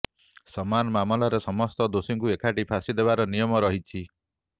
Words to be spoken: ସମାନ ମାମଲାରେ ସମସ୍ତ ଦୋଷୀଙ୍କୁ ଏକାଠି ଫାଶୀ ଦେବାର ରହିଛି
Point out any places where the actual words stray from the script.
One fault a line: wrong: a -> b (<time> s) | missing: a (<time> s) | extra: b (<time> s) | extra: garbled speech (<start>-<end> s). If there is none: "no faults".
extra: ନିୟମ (3.3 s)